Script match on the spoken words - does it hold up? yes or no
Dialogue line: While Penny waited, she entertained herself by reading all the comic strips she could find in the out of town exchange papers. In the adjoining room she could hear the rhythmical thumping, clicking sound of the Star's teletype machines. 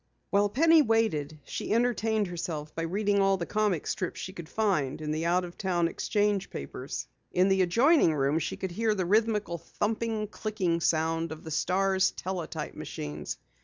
yes